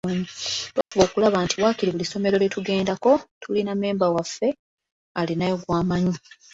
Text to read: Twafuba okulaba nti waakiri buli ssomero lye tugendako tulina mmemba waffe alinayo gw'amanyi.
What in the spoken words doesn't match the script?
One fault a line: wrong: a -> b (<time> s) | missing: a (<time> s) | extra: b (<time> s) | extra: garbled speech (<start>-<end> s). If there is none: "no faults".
no faults